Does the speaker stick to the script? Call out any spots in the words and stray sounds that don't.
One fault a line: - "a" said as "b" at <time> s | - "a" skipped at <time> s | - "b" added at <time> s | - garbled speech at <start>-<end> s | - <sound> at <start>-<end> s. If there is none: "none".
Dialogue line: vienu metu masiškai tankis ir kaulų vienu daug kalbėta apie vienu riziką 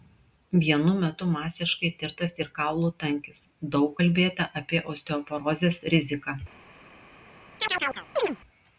- "tankis" said as "tirtas" at 2.0 s
- "vienu" said as "tankis" at 3.0 s
- "vienu" said as "osteoporozės" at 4.9 s
- chirp at 7.6-8.4 s